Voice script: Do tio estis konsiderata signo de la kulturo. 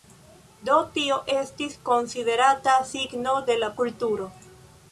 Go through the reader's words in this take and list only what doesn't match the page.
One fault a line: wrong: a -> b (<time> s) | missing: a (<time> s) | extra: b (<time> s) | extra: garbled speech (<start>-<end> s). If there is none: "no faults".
no faults